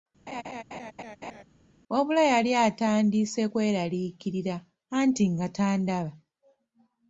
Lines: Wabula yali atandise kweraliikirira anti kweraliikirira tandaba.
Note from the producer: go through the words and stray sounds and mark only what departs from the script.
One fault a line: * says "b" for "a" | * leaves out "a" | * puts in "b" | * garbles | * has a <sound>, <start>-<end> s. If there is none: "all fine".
* has a laugh, 0.3-1.4 s
* says "nga" for "kweraliikirira"